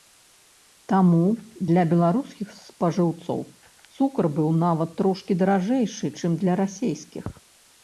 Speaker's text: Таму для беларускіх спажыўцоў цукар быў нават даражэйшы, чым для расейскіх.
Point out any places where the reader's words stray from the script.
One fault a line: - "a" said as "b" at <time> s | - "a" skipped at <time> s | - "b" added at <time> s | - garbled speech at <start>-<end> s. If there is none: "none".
- "трошкі" added at 5.0 s